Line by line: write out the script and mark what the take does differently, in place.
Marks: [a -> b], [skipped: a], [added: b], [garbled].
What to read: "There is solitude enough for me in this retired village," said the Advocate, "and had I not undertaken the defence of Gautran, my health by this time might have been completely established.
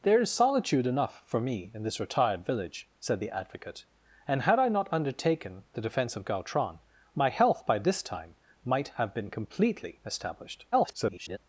"There is solitude enough for me in this retired village," said the Advocate, "and had I not undertaken the defence of Gautran, my health by this time might have been completely established. [garbled]